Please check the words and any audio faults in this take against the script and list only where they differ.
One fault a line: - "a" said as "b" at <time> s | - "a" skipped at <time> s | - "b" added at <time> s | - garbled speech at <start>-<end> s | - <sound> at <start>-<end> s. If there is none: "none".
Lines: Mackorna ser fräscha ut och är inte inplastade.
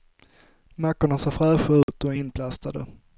- dropout at 1.8-1.9 s
- "inte" skipped at 2.2 s